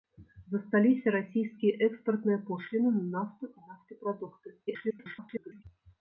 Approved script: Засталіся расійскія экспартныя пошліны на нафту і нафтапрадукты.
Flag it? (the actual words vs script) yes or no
yes